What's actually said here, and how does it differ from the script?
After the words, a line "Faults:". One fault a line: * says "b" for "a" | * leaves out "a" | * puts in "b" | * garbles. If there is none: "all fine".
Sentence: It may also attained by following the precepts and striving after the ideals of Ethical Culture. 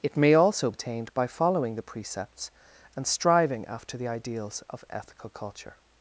It may also attained by following the precepts and striving after the ideals of Ethical Culture.
Faults:
all fine